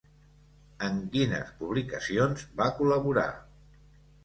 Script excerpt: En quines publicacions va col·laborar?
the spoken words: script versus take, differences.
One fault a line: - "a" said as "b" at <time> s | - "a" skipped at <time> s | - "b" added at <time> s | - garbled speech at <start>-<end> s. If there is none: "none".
none